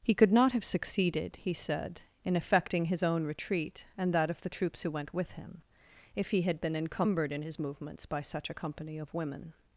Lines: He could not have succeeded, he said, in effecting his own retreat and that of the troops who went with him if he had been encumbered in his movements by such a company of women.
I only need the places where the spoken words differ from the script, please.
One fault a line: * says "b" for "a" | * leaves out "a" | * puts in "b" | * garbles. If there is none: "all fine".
all fine